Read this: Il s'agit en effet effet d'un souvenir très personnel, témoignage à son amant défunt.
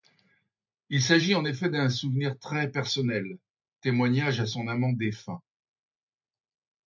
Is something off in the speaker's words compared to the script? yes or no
yes